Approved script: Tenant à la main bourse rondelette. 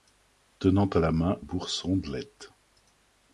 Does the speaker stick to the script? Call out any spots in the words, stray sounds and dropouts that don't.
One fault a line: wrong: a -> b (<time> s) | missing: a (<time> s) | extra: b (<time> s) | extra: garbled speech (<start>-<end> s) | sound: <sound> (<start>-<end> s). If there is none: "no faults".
no faults